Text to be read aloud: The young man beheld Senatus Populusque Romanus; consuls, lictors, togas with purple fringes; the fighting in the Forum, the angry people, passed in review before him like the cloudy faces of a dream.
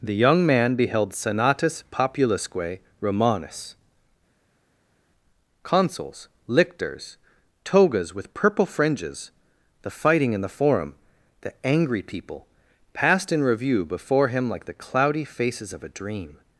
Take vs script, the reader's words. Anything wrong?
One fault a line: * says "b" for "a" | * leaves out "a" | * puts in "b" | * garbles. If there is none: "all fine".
all fine